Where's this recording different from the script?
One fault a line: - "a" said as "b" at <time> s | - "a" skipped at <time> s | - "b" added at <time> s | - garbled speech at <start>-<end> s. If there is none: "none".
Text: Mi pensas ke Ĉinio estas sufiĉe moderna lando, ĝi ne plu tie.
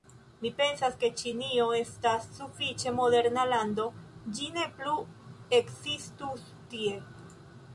- "ekzistus" added at 5.6 s